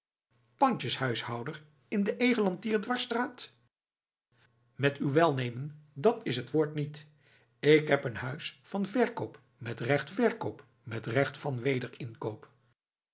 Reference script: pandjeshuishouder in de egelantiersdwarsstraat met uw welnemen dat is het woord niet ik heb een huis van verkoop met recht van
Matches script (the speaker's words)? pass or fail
fail